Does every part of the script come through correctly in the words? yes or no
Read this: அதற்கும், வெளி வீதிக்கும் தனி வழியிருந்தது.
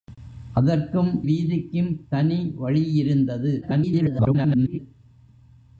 no